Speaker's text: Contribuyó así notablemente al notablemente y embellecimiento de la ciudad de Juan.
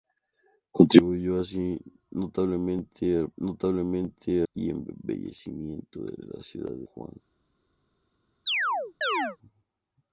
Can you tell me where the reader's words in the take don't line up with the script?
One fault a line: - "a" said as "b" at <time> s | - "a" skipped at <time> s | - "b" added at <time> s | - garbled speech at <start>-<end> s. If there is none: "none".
none